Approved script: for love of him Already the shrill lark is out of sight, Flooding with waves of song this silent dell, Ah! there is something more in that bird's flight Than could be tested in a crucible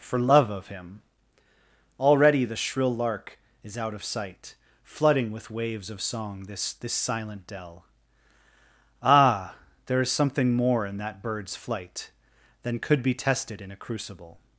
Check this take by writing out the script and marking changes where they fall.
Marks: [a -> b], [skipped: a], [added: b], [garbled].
for love of him Already the shrill lark is out of sight, Flooding with waves of song this [added: this] silent dell, Ah! there is something more in that bird's flight Than could be tested in a crucible